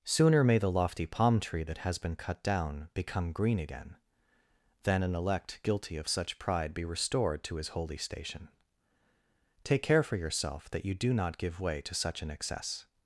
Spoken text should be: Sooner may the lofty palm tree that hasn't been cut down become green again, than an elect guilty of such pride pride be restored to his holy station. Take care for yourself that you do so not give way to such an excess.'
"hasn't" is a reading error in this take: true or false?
true